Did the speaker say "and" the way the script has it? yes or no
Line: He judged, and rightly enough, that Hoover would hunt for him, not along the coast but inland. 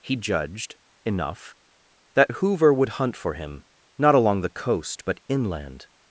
no